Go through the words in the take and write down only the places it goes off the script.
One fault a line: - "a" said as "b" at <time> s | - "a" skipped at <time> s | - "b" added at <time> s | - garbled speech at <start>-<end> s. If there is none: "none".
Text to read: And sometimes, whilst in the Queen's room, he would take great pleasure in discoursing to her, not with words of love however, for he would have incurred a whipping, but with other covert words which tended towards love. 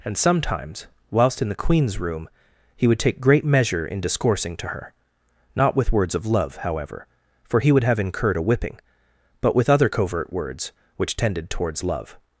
- "pleasure" said as "measure" at 3.5 s